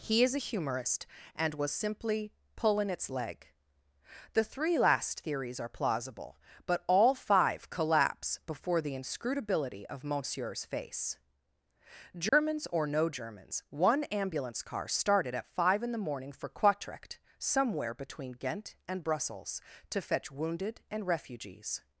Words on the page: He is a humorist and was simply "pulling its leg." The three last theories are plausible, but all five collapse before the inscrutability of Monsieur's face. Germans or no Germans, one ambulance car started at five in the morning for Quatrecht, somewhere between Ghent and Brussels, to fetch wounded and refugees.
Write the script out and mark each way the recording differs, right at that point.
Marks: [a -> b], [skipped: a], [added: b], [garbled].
He is a humorist and was simply "pulling its leg." The three last theories are plausible, but all five collapse before the inscrutability of Monsieur's face. Germans or no Germans, one ambulance car started at five in the morning for Quatrecht, somewhere between Ghent and Brussels, to fetch wounded and refugees.